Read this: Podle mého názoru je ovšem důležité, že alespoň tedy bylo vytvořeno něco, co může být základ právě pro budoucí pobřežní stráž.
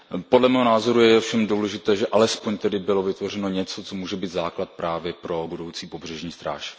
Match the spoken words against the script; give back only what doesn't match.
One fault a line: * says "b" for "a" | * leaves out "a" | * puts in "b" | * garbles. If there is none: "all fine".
all fine